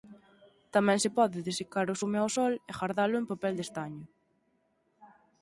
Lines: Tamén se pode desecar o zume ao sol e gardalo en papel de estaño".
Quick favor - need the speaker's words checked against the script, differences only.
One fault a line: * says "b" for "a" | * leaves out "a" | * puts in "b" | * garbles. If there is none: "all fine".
all fine